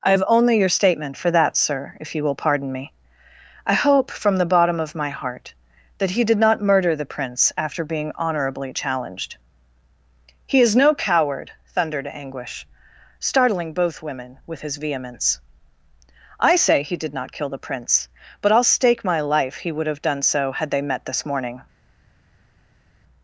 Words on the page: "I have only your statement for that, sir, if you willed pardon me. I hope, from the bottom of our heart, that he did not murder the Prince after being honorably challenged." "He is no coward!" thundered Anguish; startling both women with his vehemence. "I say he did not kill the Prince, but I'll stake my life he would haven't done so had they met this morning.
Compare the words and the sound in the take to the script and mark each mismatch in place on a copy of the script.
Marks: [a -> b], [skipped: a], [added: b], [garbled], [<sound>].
"I have only your statement for that, sir, if you [willed -> will] pardon me. I hope, from the bottom of [our -> my] heart, that he did not murder the Prince after being honorably challenged." "He is no coward!" thundered Anguish; startling both women with his vehemence. "I say he did not kill the Prince, but I'll stake my life he would [haven't -> have] done so had they met this morning.